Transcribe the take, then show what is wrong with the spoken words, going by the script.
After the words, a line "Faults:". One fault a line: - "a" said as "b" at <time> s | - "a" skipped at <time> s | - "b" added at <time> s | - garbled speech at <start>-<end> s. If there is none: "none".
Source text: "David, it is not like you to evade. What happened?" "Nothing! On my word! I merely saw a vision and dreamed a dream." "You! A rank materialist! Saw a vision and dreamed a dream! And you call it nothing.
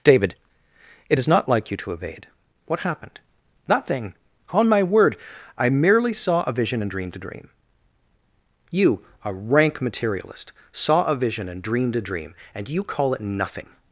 "David, it is not like you to evade. What happened?" "Nothing! On my word! I merely saw a vision and dreamed a dream." "You! A rank materialist! Saw a vision and dreamed a dream! And you call it nothing.
Faults:
none